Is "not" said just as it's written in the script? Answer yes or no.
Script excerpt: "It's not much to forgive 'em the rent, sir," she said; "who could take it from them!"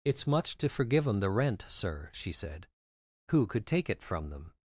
no